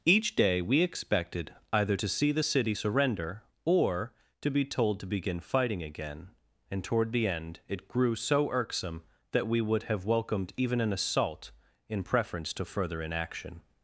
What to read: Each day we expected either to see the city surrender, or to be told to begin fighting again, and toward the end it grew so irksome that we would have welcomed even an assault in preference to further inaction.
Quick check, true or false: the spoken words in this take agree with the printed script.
true